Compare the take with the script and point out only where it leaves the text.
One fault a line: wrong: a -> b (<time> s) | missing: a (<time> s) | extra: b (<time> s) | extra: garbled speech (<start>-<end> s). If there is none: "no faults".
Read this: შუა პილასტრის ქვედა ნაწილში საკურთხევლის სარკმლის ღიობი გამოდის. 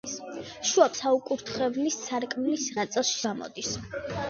missing: პილასტრის ქვედა ნაწილში (0.9 s)
wrong: ღიობი -> ნაწილში (2.8 s)